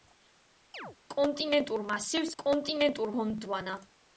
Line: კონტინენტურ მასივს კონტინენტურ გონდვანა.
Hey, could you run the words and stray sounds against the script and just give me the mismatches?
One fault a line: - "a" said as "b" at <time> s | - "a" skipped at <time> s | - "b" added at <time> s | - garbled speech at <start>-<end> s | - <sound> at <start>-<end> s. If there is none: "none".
- chirp at 0.7-1.0 s